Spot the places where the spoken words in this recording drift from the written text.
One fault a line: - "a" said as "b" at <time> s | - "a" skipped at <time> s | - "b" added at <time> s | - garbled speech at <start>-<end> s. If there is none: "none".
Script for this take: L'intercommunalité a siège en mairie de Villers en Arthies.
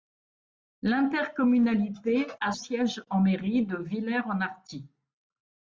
none